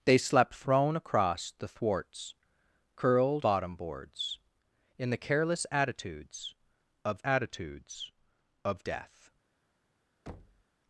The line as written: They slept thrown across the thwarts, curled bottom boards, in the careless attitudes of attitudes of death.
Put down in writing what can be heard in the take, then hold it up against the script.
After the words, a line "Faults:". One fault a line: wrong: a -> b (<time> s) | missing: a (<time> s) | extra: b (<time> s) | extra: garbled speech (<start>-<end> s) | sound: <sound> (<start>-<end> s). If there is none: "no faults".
They slept thrown across the thwarts, curled bottom boards, in the careless attitudes of attitudes of death.
Faults:
sound: thud (10.3-10.6 s)